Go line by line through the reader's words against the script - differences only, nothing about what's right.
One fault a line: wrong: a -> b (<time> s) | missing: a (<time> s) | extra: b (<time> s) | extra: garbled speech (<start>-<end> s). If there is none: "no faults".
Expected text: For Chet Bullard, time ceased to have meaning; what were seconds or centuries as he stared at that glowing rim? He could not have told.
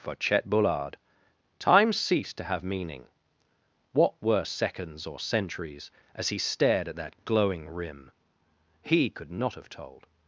no faults